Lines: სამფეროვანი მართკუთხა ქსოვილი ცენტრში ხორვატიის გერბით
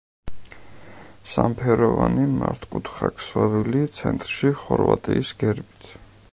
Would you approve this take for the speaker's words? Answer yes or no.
yes